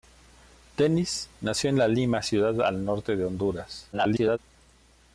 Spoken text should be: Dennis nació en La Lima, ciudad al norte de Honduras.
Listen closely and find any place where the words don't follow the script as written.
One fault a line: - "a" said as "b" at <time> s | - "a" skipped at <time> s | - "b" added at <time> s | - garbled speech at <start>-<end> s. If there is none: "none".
- garbled speech at 3.9-4.4 s